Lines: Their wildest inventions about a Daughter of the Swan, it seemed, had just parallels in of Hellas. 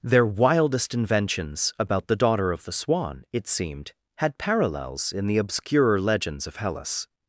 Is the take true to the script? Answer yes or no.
no